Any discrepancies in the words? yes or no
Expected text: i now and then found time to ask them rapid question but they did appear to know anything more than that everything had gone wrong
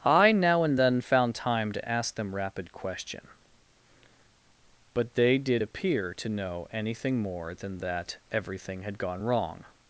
no